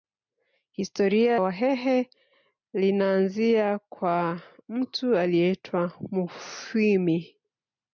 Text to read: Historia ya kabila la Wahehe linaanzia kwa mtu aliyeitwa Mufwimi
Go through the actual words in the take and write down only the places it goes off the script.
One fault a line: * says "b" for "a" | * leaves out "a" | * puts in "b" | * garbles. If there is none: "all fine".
* leaves out "ya kabila la"